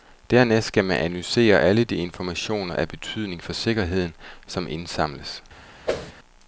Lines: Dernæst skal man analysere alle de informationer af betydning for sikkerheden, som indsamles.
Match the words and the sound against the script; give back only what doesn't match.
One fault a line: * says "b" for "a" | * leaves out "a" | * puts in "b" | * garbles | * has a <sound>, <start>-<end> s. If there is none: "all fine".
* has a whoosh, 5.9-6.1 s